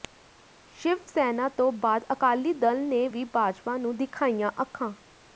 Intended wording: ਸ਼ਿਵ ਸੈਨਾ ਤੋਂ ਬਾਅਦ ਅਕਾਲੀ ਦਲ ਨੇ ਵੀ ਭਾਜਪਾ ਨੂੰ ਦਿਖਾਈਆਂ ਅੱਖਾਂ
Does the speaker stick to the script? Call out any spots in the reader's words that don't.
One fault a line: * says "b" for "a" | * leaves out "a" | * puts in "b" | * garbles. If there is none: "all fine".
all fine